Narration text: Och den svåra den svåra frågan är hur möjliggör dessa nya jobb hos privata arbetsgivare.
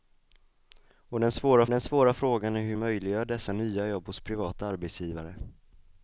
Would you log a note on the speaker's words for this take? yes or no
no